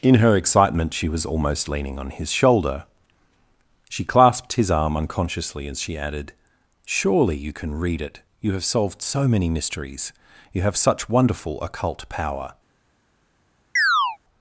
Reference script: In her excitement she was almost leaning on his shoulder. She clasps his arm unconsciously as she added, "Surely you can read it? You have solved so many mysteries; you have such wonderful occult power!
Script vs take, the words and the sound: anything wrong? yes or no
yes